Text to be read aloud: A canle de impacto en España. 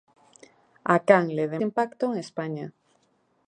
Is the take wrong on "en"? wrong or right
right